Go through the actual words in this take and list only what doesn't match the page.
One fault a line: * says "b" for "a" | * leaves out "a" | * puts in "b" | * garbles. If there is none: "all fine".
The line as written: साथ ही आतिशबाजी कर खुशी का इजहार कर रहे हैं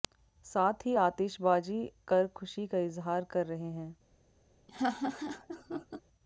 all fine